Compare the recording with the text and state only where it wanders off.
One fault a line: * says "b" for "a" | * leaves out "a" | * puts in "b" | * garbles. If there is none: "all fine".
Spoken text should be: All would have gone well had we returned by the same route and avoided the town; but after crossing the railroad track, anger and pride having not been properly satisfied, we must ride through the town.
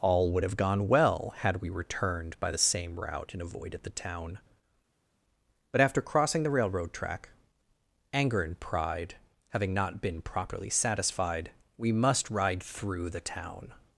all fine